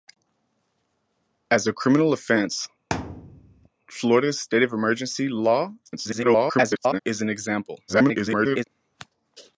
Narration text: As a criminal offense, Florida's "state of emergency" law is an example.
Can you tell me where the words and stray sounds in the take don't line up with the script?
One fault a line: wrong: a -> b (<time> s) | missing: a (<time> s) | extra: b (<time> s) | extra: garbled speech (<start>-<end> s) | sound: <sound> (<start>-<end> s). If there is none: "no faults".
sound: thud (2.9-3.7 s)
extra: garbled speech (5.8-7.0 s)
extra: garbled speech (7.9-8.6 s)